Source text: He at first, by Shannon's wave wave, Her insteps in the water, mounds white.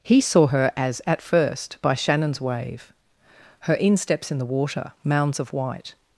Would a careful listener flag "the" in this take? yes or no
no